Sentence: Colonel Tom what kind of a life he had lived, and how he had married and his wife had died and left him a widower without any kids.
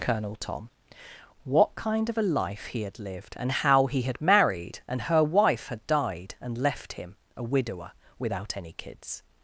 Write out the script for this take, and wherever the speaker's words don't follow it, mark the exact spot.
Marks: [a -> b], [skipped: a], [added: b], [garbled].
Colonel Tom what kind of a life he had lived, and how he had married and [his -> her] wife had died and left him a widower without any kids.